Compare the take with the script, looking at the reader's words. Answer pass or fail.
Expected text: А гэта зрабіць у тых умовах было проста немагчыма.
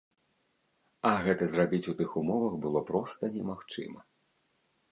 pass